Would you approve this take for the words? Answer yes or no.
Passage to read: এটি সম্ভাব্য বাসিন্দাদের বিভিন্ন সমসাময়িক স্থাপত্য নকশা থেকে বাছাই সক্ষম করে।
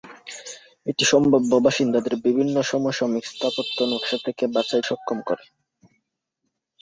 yes